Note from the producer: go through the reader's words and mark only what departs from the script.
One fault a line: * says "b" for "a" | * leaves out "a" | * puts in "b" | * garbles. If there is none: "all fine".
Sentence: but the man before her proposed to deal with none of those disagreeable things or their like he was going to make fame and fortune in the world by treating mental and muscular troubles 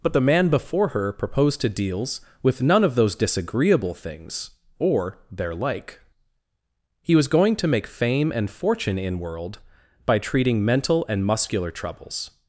* says "deals" for "deal"
* leaves out "the"